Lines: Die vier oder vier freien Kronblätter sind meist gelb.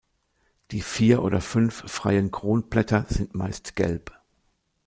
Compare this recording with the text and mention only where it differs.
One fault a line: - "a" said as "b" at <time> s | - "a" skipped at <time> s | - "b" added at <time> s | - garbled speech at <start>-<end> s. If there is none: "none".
- "vier" said as "fünf" at 1.4 s